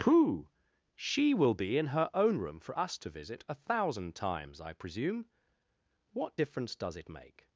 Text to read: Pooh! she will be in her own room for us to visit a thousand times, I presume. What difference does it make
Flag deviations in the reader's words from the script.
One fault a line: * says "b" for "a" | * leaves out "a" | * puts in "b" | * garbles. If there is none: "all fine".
all fine